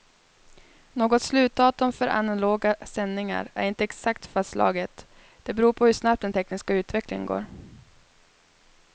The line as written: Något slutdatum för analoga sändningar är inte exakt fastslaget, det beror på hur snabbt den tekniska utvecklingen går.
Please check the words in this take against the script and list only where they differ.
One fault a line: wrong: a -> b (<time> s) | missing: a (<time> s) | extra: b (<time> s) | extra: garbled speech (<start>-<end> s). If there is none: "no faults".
no faults